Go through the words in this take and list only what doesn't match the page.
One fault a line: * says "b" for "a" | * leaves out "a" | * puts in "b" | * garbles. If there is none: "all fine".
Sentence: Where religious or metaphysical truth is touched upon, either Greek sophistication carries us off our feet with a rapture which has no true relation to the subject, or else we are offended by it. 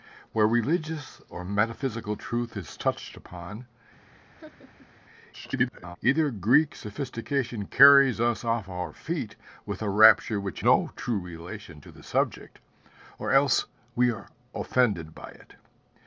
* garbles
* leaves out "has"